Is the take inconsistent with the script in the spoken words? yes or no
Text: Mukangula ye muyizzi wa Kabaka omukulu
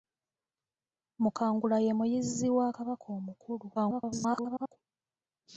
yes